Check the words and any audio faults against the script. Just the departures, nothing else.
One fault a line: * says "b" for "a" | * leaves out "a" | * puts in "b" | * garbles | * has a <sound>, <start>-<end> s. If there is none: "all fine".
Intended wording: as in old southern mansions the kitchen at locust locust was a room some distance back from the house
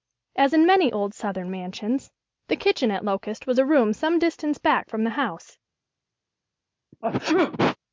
* puts in "many"
* leaves out "locust"
* has a sneeze, 6.9-7.8 s